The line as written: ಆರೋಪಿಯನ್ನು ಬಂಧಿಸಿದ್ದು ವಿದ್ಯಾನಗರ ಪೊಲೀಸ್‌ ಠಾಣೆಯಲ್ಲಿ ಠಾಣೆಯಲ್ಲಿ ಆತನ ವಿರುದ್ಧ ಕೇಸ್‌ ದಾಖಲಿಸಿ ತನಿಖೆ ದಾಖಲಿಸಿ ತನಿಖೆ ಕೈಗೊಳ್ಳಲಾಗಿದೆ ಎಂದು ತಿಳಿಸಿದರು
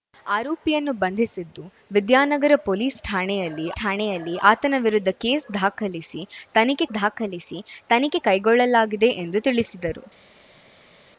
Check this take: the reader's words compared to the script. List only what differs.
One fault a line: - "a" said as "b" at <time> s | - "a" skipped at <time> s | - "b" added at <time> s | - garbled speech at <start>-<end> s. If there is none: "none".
none